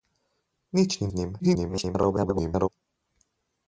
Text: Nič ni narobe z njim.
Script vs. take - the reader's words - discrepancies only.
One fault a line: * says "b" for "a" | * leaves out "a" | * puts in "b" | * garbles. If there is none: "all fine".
* leaves out "narobe"
* garbles